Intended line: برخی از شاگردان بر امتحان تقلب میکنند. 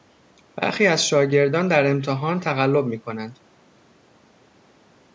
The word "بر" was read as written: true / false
false